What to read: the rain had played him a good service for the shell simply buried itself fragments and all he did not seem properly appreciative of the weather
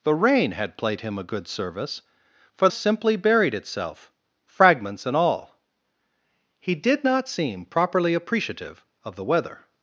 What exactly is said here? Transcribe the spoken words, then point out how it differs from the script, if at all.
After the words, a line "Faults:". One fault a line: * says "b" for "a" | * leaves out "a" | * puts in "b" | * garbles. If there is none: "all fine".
the rain had played him a good service for simply buried itself fragments and all he did not seem properly appreciative of the weather
Faults:
* leaves out "the shell"